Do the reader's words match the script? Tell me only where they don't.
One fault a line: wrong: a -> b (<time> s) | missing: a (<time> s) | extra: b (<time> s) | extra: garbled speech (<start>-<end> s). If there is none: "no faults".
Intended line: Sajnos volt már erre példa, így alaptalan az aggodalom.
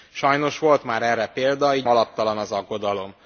no faults